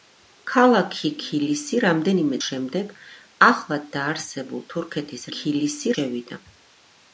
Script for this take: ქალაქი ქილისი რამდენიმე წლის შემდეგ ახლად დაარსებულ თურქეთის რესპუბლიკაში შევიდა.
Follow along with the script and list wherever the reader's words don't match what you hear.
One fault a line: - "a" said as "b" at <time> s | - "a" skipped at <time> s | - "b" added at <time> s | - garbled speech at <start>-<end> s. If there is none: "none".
- "წლის" skipped at 2.4 s
- "რესპუბლიკაში" said as "ქილისი" at 5.4 s